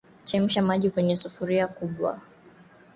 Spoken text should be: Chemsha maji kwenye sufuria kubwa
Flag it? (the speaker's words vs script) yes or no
no